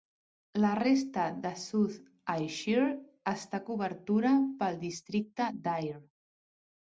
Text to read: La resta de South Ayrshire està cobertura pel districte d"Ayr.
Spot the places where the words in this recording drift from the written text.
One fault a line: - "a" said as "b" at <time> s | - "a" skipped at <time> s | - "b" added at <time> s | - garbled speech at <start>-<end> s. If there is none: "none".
none